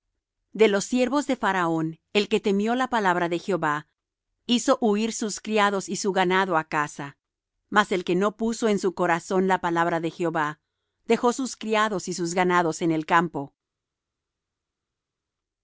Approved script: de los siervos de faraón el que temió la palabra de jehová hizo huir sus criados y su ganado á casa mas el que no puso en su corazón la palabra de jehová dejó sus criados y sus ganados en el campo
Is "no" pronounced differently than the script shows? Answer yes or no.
no